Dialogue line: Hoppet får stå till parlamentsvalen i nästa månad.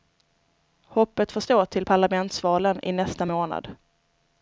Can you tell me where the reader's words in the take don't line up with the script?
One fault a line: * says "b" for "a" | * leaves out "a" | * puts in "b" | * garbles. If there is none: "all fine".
all fine